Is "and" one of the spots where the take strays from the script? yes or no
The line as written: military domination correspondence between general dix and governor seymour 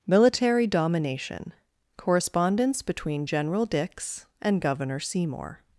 no